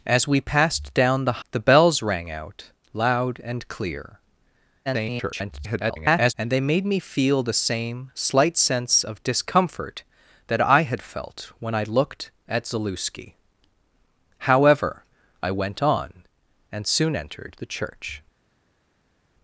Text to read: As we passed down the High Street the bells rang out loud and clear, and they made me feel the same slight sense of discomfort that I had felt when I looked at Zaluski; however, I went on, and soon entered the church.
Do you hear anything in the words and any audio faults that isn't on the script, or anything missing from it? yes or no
yes